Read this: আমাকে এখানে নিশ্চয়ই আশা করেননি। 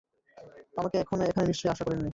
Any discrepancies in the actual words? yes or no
no